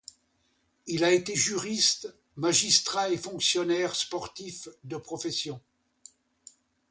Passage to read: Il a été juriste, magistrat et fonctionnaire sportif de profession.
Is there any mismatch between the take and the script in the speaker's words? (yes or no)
no